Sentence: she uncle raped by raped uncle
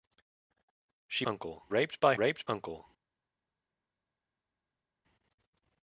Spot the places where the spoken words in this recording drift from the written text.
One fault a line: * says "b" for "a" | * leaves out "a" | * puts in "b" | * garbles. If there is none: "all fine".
all fine